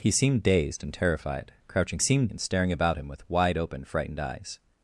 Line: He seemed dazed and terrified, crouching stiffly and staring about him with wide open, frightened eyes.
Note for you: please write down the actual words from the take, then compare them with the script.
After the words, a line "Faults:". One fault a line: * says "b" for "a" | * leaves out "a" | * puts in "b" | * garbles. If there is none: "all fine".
He seemed dazed and terrified, crouching seemed and staring about him with wide open, frightened eyes.
Faults:
* says "seemed" for "stiffly"